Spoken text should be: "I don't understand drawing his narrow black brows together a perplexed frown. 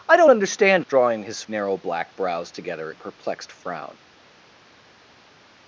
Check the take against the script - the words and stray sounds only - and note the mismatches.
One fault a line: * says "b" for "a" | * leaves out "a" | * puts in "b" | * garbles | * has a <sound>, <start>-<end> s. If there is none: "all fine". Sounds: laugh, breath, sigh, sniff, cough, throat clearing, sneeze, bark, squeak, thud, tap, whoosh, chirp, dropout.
all fine